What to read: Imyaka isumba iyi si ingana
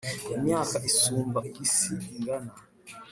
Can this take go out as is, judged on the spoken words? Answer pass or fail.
pass